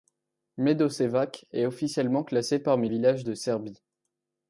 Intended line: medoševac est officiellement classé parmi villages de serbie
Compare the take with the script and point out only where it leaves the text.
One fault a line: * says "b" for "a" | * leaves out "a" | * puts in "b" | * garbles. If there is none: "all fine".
all fine